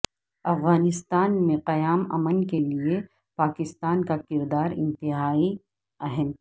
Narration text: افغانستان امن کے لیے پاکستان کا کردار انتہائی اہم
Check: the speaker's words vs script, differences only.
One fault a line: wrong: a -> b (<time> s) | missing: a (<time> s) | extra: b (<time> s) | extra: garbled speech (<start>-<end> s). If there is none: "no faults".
extra: میں قیام (1.5 s)